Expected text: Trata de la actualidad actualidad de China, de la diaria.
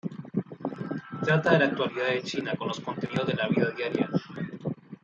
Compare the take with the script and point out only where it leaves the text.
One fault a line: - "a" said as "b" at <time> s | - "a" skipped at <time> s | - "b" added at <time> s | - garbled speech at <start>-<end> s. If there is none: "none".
- "actualidad" skipped at 2.1 s
- "con los contenidos" added at 2.6 s
- "vida" added at 3.5 s